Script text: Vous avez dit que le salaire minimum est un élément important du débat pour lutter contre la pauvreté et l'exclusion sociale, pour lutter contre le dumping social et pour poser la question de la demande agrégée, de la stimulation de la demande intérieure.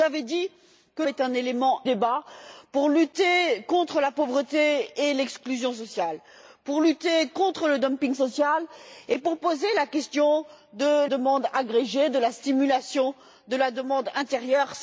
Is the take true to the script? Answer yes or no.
no